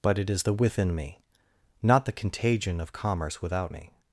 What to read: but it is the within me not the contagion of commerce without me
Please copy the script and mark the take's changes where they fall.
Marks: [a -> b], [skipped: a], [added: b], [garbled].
but it is the within me not the contagion of commerce without me